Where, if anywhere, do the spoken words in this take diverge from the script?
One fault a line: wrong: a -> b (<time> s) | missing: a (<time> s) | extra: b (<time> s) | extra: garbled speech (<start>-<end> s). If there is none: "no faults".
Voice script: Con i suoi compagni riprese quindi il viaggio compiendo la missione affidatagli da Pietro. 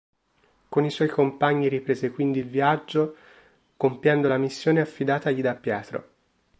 no faults